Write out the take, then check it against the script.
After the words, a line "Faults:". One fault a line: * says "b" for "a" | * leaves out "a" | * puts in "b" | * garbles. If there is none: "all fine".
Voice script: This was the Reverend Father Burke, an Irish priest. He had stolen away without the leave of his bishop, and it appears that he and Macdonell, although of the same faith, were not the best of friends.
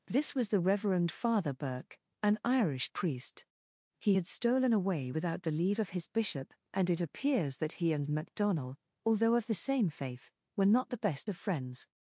This was the Reverend Father Burke, an Irish priest. He had stolen away without the leave of his bishop, and it appears that he and Macdonell, although of the same faith, were not the best of friends.
Faults:
all fine